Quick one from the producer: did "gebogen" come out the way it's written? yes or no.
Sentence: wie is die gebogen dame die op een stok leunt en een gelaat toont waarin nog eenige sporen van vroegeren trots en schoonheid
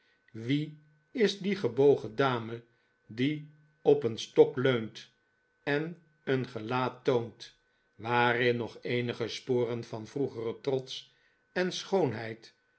yes